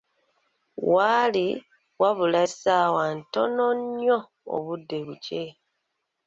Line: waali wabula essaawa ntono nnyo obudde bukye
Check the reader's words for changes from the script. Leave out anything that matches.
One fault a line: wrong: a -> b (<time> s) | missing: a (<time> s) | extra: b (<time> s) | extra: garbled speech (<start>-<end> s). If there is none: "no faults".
no faults